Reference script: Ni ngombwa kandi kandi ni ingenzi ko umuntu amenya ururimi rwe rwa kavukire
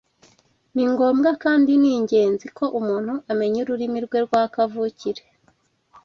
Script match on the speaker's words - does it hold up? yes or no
no